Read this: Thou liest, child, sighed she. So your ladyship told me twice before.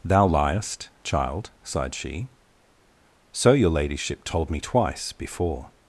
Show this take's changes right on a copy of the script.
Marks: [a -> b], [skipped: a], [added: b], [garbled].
Thou liest, child, sighed she. So your ladyship told me twice before.